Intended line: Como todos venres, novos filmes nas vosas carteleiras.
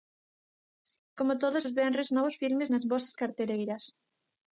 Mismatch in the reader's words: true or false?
true